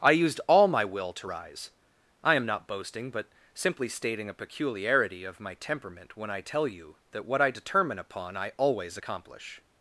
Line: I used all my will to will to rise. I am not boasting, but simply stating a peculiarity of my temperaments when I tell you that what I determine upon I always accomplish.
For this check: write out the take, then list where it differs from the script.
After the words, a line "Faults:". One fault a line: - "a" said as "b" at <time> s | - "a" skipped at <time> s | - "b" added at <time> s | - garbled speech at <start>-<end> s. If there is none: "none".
I used all my will to rise. I am not boasting, but simply stating a peculiarity of my temperament when I tell you that what I determine upon I always accomplish.
Faults:
- "will to" skipped at 1.3 s
- "temperaments" said as "temperament" at 5.5 s